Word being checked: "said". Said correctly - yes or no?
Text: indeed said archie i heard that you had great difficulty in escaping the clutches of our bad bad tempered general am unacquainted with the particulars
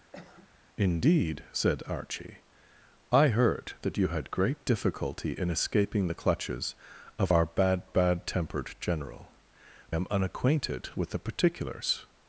yes